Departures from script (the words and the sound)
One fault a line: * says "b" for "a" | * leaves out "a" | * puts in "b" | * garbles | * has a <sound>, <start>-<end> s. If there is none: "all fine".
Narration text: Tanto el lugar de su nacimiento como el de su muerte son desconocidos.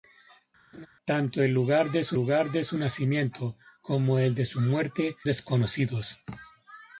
* has a laugh, 0.7-0.9 s
* puts in "lugar de su"
* leaves out "son"